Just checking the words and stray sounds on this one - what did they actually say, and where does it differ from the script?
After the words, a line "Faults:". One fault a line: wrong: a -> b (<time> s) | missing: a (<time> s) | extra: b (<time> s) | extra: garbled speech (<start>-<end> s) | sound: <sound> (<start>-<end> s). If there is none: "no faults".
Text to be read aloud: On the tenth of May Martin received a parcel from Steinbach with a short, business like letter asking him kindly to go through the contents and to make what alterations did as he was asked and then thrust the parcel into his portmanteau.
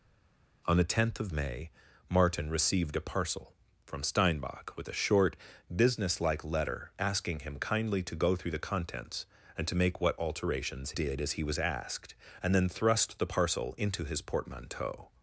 On the tenth of May Martin received a parcel from Steinbach with a short, business like letter asking him kindly to go through the contents and to make what alterations did as he was asked and then thrust the parcel into his portmanteau.
Faults:
no faults